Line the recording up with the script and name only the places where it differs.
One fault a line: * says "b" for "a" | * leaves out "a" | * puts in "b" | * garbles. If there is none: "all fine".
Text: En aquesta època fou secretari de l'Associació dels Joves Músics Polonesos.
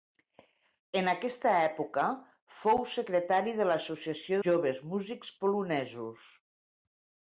* leaves out "dels"